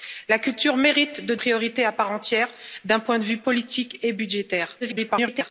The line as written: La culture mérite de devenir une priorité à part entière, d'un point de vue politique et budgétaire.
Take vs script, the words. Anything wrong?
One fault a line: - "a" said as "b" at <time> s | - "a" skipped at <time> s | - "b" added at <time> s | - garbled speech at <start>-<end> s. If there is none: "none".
- "devenir une" skipped at 1.4 s
- garbled speech at 4.8-5.5 s